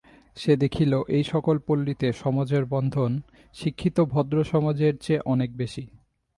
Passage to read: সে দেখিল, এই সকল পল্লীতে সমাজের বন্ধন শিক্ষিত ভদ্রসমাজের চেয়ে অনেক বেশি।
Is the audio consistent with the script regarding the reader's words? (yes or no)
yes